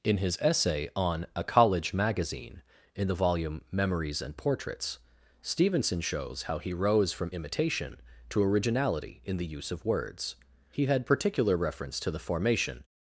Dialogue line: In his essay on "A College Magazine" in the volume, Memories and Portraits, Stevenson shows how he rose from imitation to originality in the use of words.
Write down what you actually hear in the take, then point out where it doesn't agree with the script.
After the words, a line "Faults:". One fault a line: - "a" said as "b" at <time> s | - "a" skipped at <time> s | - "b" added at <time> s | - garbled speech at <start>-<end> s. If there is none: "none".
In his essay on "A College Magazine" in the volume, Memories and Portraits, Stevenson shows how he rose from imitation to originality in the use of words. He had particular reference to the formation
Faults:
- "He had particular reference to the formation" added at 10.7 s